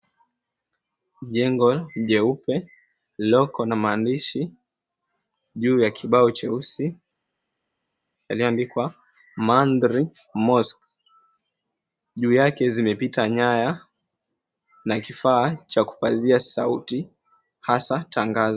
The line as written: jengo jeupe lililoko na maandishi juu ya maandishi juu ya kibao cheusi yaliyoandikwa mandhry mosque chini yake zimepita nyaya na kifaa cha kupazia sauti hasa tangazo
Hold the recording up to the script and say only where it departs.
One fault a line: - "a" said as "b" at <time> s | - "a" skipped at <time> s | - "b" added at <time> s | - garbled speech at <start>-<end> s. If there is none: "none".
- "maandishi juu ya" skipped at 5.9 s
- "chini" said as "juu" at 12.2 s